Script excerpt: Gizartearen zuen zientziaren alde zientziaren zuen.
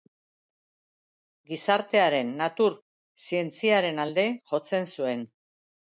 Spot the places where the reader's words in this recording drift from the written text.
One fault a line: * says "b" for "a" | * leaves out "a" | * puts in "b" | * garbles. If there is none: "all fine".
* says "natur" for "zuen"
* says "jotzen" for "zientziaren"